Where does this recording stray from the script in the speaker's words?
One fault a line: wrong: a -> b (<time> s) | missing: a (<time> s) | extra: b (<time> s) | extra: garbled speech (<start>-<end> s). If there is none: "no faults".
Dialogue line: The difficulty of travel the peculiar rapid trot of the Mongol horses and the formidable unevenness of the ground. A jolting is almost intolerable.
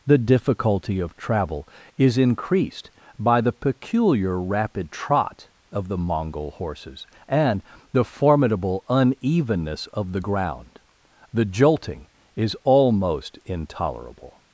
extra: is increased by (1.9 s)
wrong: A -> The (11.3 s)